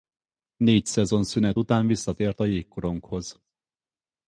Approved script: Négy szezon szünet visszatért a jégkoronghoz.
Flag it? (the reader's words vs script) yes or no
yes